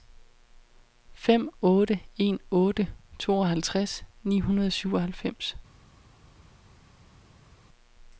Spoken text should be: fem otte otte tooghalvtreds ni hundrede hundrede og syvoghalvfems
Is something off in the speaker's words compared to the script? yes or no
yes